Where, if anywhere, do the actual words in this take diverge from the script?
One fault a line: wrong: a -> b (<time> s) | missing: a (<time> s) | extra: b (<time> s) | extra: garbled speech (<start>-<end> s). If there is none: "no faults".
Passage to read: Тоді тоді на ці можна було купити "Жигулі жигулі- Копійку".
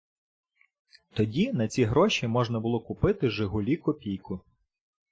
missing: тоді (1.5 s)
extra: гроші (1.8 s)
missing: жигулі (3.8 s)